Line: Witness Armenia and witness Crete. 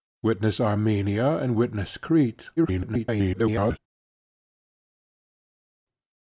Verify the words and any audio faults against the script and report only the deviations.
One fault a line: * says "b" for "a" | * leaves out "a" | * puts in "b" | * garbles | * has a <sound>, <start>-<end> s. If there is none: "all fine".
* garbles